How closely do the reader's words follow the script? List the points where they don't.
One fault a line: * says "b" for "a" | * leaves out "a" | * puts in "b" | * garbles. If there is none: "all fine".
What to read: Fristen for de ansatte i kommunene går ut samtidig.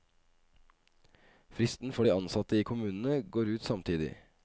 all fine